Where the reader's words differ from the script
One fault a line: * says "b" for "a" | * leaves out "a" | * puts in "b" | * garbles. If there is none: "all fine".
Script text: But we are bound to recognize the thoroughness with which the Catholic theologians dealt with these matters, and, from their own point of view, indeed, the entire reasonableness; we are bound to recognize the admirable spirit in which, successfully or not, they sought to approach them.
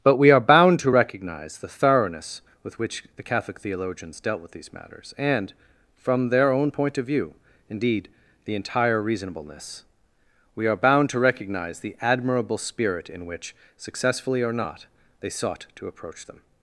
all fine